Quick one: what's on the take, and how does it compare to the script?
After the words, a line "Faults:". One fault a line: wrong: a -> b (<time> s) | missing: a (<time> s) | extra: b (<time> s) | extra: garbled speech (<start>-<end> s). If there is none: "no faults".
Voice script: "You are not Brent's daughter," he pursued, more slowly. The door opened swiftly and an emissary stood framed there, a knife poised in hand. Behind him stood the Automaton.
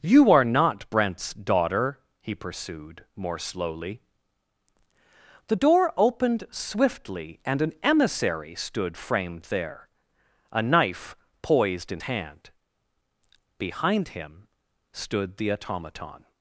"You are not Brent's daughter," he pursued, more slowly. The door opened swiftly and an emissary stood framed there, a knife poised in hand. Behind him stood the Automaton.
Faults:
no faults